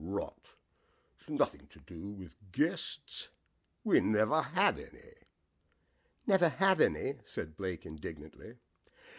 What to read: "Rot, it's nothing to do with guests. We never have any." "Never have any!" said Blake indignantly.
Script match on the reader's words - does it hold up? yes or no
yes